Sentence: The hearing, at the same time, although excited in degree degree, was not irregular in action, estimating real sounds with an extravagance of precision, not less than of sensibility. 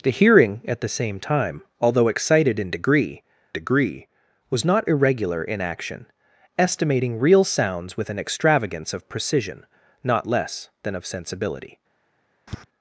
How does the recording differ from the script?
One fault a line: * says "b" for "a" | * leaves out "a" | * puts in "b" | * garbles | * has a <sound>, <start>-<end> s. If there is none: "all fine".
* has a tap, 12.5-12.6 s